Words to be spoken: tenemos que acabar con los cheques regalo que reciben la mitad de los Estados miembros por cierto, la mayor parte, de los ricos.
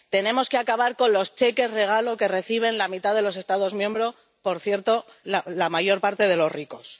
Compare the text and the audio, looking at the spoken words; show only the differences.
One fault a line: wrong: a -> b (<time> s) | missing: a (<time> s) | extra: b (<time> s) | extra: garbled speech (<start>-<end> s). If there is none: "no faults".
no faults